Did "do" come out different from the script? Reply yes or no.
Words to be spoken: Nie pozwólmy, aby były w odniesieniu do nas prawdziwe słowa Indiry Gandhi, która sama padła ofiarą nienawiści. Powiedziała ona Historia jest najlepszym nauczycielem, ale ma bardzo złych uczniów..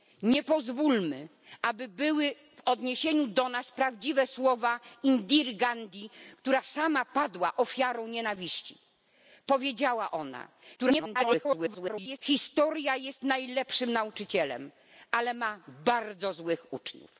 no